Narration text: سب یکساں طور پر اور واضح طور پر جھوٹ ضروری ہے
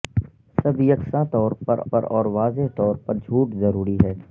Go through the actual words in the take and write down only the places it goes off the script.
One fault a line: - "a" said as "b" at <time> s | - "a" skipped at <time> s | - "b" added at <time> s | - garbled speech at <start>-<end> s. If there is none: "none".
- "پر" added at 1.9 s